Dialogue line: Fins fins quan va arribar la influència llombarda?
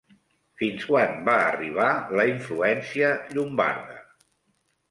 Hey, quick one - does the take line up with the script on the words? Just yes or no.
no